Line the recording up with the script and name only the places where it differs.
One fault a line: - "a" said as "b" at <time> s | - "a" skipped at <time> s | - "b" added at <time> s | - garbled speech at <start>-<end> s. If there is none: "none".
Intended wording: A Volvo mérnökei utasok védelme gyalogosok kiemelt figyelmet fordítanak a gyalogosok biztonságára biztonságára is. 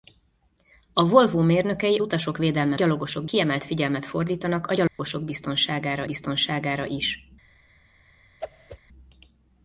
none